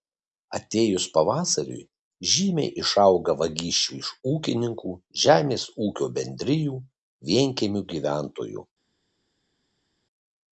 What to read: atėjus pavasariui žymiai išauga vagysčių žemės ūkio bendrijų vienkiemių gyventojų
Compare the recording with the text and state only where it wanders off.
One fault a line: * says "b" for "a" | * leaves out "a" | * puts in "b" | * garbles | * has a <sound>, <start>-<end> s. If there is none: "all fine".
* puts in "iš ūkininkų"